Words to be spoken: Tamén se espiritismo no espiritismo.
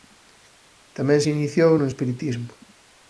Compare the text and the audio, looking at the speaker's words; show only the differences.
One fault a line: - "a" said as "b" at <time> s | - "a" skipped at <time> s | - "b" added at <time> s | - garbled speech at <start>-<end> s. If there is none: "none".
- "espiritismo" said as "iniciou" at 1.4 s